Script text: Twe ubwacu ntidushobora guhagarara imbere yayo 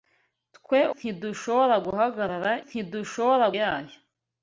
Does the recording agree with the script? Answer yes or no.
no